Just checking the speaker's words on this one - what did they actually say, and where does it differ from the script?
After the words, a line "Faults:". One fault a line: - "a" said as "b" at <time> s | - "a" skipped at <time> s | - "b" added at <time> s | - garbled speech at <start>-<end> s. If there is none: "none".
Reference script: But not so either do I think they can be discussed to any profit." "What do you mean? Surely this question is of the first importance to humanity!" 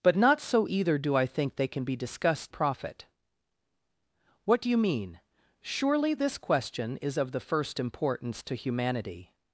But not so either do I think they can be discussed profit." "What do you mean? Surely this question is of the first importance to humanity!"
Faults:
- "to any" skipped at 2.5 s